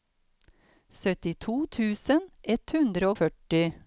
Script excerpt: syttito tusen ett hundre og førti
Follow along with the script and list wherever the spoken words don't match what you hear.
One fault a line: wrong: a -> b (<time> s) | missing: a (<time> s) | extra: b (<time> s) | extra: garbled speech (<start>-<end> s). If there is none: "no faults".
missing: og (3.1 s)